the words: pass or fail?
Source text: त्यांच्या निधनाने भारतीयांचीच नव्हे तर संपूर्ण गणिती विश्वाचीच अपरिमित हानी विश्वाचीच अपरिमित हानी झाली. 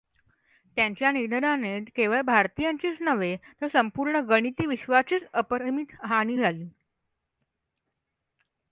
fail